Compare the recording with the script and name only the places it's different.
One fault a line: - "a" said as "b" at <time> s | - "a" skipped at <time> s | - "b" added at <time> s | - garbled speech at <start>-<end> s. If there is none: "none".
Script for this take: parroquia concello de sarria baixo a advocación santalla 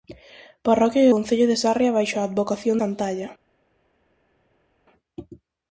none